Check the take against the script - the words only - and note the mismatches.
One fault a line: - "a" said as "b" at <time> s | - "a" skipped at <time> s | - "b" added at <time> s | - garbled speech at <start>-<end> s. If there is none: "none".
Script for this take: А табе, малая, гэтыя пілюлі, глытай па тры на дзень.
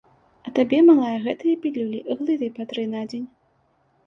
none